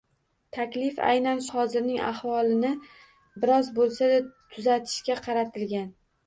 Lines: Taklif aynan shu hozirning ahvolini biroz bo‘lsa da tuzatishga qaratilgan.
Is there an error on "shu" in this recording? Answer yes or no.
yes